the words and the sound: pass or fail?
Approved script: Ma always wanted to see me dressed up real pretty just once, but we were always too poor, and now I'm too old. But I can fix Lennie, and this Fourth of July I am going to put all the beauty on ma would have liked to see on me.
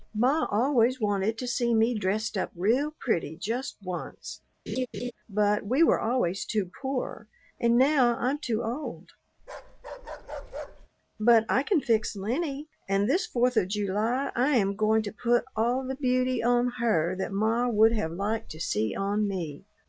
fail